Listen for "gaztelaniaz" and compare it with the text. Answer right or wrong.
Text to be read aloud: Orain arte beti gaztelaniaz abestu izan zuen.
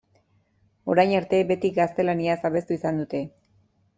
right